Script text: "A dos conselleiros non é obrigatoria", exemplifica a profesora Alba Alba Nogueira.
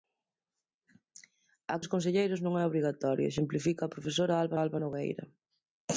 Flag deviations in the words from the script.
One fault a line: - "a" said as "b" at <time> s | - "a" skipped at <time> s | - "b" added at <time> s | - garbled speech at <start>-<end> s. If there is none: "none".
none